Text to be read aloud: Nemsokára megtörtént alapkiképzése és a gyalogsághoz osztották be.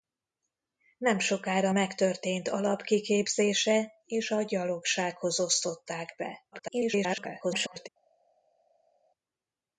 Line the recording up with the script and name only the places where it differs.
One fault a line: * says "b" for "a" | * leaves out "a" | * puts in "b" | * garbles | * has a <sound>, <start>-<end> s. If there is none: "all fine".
* garbles